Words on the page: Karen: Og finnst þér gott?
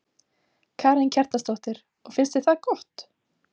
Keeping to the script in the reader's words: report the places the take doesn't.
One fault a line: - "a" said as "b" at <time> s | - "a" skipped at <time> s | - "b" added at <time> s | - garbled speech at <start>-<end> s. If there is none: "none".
- "Kjartansdóttir" added at 1.2 s
- "það" added at 2.5 s